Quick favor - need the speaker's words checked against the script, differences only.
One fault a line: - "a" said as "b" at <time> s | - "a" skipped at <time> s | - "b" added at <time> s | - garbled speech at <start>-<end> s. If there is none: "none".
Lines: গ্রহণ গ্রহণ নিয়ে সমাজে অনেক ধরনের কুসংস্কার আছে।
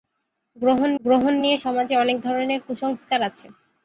none